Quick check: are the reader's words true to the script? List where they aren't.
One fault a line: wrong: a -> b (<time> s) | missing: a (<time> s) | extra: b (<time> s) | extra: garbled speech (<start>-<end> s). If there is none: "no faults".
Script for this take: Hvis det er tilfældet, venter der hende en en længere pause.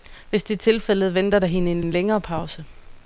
no faults